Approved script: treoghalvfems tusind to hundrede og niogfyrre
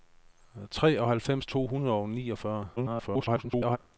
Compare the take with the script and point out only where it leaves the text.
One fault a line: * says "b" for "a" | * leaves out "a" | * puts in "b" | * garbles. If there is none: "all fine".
* leaves out "tusind"
* garbles